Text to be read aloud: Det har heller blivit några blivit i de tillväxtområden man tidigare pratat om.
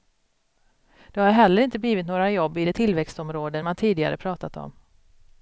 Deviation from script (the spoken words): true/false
true